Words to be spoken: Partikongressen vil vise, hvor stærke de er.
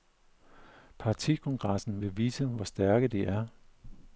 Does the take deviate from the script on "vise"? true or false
false